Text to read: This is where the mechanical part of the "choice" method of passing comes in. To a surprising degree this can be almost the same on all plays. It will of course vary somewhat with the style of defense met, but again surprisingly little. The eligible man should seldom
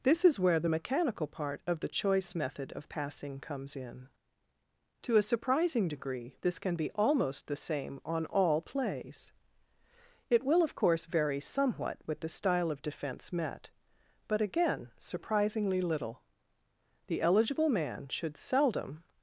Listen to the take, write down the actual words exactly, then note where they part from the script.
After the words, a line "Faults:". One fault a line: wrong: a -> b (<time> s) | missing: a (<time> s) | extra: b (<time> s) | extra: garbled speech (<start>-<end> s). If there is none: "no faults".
This is where the mechanical part of the "choice" method of passing comes in. To a surprising degree this can be almost the same on all plays. It will of course vary somewhat with the style of defense met, but again surprisingly little. The eligible man should seldom
Faults:
no faults